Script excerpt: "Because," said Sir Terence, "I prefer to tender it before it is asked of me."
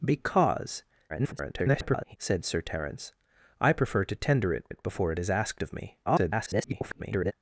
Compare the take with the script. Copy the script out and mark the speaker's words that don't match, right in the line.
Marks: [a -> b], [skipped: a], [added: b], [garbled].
"Because," [garbled] said Sir Terence, "I prefer to tender it [added: it] before it is asked of me." [garbled]